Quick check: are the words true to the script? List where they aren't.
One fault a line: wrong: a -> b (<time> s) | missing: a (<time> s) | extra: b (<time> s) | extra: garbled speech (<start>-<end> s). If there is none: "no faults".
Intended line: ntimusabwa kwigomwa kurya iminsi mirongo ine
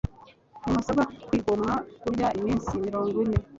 no faults